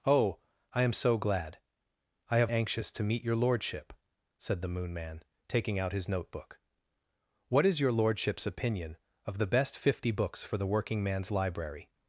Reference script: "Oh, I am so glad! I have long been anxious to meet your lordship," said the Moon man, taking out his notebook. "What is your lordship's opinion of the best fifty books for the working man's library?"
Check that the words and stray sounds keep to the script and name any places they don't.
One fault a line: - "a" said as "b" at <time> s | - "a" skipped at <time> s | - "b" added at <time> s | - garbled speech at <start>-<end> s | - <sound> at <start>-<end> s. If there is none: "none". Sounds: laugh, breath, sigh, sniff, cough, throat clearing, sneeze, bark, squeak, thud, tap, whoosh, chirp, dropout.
- "long been" skipped at 2.5 s